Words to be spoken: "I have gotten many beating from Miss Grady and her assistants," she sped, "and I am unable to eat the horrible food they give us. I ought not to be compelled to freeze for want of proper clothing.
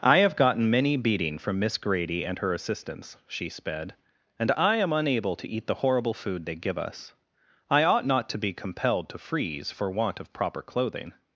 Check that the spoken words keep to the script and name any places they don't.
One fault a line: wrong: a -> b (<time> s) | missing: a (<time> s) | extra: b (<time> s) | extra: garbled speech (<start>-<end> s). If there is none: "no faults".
no faults